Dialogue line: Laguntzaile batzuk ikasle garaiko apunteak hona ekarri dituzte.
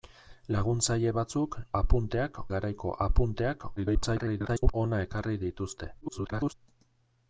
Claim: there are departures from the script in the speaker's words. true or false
true